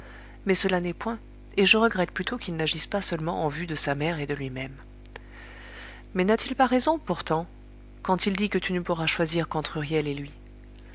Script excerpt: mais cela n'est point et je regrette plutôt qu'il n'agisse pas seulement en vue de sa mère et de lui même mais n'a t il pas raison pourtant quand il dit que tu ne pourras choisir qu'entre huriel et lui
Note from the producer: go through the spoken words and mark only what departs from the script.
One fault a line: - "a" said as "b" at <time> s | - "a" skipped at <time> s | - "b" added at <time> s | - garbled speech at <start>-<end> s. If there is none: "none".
none